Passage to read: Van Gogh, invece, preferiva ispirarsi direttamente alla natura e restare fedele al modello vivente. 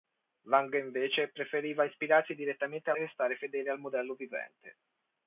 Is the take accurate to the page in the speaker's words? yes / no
no